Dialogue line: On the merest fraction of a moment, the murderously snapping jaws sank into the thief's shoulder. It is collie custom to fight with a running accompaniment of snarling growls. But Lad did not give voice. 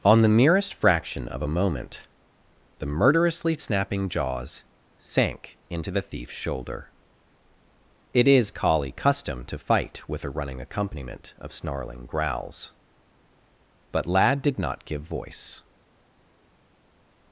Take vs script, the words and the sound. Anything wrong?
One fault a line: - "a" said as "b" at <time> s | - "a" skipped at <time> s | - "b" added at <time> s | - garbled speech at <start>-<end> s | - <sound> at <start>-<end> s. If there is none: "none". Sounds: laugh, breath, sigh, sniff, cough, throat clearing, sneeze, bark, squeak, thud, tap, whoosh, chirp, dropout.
none